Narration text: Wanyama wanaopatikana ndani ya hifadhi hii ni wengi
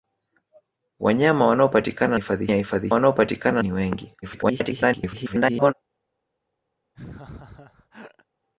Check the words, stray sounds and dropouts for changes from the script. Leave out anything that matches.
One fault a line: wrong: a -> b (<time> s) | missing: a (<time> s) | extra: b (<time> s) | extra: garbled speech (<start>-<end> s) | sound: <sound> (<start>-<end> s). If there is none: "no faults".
wrong: ndani -> hifadhi (2.1 s)
wrong: hii -> wanaopatikana (2.9 s)
extra: garbled speech (4.2-5.7 s)
sound: laugh (6.9-8.2 s)